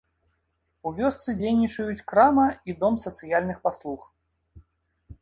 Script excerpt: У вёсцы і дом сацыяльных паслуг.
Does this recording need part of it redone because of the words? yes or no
yes